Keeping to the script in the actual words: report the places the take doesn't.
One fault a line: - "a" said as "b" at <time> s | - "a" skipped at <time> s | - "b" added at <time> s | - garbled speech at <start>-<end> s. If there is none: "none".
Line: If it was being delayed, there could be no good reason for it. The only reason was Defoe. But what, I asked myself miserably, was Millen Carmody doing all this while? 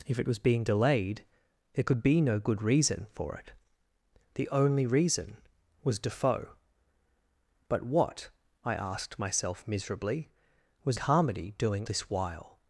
- "Millen" skipped at 11.0 s
- "all" skipped at 11.9 s